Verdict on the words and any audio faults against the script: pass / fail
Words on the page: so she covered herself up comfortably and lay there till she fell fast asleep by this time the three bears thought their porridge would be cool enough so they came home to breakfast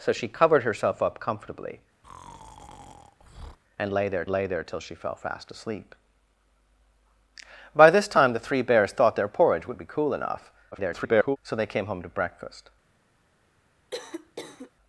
fail